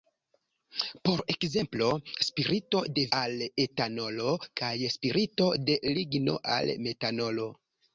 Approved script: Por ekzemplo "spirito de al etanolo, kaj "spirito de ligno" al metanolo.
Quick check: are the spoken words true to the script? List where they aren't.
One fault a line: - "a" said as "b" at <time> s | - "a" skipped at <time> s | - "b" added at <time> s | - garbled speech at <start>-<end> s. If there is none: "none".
none